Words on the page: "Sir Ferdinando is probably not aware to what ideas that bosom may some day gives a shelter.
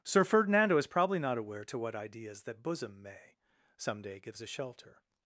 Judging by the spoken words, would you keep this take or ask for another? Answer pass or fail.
pass